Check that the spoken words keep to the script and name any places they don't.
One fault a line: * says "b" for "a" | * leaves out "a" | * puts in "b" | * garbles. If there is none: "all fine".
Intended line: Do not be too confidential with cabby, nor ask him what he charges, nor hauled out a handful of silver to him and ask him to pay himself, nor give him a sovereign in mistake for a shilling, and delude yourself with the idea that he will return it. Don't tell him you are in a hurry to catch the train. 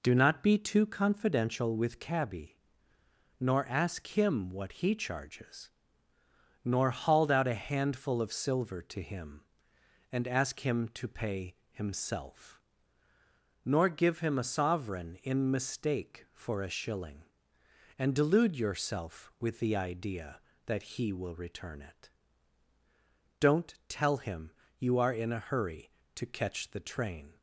all fine